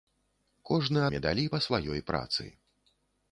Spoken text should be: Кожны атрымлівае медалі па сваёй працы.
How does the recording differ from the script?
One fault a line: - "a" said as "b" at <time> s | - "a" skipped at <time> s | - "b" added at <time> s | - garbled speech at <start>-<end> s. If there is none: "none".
- "атрымлівае" skipped at 1.0 s